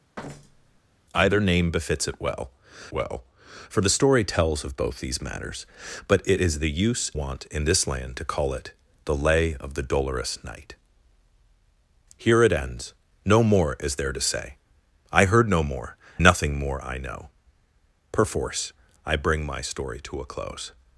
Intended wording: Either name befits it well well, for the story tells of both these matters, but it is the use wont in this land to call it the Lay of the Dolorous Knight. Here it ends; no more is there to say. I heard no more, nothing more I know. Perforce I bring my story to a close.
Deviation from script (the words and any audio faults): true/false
true